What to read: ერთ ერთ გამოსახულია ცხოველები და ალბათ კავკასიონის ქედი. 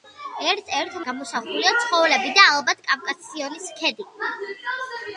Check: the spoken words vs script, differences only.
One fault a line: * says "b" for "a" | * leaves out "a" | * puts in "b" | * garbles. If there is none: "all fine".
all fine